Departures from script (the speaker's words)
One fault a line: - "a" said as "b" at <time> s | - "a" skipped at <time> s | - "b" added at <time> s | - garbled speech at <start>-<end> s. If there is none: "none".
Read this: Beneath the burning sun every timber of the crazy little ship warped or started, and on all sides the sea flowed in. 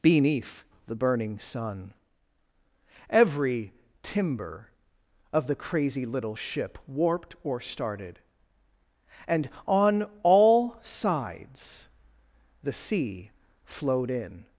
none